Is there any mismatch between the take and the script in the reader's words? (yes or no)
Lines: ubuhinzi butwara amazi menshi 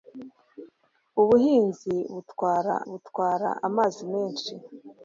yes